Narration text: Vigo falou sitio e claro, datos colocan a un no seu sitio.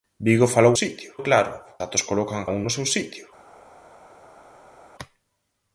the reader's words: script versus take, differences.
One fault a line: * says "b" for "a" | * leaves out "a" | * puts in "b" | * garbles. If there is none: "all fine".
all fine